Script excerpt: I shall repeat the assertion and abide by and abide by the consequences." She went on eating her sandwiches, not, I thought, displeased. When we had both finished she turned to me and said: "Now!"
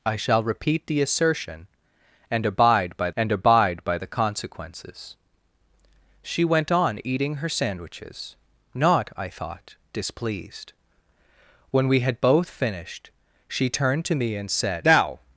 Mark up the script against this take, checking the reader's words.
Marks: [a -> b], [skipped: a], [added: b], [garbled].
I shall repeat the assertion and abide by and abide by the consequences." She went on eating her sandwiches, not, I thought, displeased. When we had both finished she turned to me and said: "Now!"